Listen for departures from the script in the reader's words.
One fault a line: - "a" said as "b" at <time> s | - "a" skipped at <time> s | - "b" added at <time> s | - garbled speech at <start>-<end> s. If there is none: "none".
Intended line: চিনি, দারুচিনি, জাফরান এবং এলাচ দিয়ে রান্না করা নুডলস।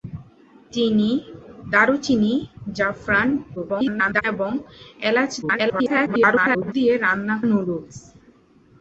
- garbled speech at 3.6-4.2 s
- garbled speech at 5.4-6.7 s
- "করা" skipped at 7.4 s